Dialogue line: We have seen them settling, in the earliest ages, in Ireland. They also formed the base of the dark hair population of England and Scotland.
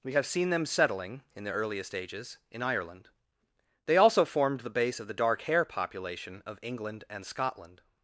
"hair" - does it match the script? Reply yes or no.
yes